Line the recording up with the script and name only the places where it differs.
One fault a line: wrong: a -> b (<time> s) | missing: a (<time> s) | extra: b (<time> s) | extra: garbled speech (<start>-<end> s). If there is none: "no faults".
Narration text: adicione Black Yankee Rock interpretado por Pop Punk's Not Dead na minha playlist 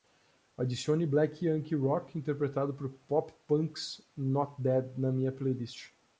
no faults